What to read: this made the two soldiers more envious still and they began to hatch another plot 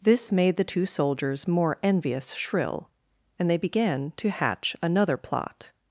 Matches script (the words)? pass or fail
fail